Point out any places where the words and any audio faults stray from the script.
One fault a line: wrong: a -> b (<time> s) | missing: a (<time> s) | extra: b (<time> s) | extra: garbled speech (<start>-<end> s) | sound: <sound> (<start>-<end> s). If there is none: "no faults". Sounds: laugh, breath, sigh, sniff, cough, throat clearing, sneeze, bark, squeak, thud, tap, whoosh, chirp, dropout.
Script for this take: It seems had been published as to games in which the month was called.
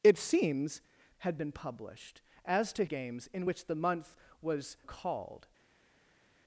no faults